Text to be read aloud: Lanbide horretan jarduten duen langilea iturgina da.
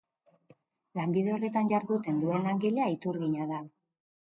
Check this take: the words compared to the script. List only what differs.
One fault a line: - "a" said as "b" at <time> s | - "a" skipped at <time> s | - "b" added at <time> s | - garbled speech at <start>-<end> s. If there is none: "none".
none